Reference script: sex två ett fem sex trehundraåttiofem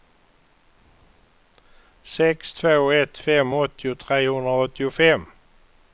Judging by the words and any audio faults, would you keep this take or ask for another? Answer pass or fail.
fail